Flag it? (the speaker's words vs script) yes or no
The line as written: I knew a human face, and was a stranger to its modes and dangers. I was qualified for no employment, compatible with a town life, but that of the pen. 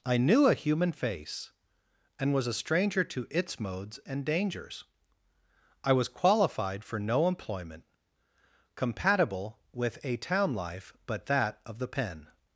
no